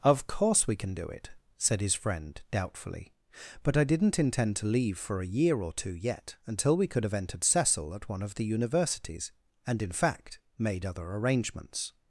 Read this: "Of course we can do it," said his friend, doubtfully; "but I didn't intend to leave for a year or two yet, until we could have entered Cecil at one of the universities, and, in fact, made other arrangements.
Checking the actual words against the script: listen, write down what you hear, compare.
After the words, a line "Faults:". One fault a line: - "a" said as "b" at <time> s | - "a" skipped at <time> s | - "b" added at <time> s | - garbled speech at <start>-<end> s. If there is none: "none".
"Of course we can do it," said his friend, doubtfully; "but I didn't intend to leave for a year or two yet, until we could have entered Cecil at one of the universities, and, in fact, made other arrangements.
Faults:
none